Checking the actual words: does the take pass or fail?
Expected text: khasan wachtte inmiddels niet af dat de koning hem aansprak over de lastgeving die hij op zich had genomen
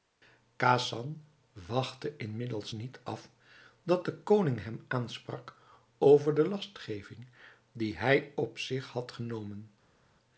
pass